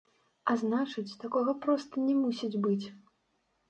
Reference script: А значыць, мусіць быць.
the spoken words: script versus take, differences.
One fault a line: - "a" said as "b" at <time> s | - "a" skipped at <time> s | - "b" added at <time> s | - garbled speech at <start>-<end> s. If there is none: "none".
- "такога проста не" added at 1.2 s